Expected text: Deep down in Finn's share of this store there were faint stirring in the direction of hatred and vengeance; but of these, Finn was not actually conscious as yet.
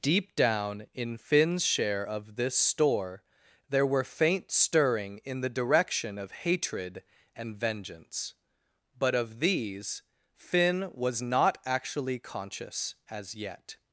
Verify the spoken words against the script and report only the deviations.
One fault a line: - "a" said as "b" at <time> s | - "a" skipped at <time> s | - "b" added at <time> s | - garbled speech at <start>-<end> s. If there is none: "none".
none